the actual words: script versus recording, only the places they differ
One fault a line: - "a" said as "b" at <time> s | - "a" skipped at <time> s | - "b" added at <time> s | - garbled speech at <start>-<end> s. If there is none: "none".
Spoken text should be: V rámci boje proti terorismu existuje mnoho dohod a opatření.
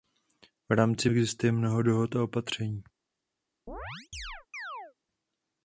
- "boje proti terorismu" skipped at 1.1 s